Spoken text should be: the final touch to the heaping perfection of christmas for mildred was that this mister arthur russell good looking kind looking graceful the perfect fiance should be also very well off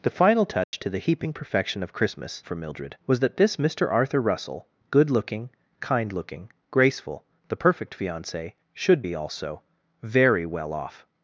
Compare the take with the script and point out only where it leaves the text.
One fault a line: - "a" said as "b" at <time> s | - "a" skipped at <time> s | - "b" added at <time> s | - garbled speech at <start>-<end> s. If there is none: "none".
none